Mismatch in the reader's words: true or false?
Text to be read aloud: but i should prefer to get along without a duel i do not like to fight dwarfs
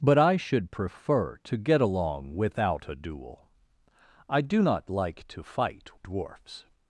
false